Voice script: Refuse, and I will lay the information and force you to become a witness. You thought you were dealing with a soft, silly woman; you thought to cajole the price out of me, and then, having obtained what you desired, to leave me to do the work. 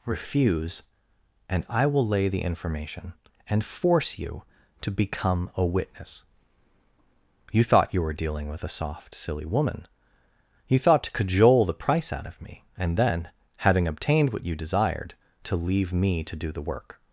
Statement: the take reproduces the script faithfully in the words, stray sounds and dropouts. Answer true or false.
true